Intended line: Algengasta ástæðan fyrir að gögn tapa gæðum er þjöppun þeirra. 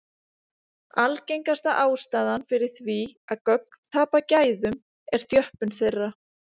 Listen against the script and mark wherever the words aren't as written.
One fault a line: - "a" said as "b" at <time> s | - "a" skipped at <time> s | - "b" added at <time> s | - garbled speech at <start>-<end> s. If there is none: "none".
- "því" added at 2.8 s